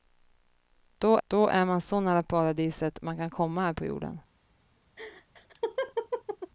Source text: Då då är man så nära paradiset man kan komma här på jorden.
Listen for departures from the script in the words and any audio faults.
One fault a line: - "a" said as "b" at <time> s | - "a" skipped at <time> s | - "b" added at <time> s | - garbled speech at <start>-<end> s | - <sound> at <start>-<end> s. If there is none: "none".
- laugh at 5.0-6.5 s